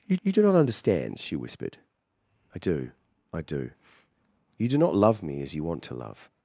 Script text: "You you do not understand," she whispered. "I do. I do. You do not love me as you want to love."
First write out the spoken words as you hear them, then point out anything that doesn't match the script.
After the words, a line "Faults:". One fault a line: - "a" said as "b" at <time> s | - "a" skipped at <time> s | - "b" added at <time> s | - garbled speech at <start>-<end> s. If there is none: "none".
"You you do not understand," she whispered. "I do. I do. You do not love me as you want to love."
Faults:
none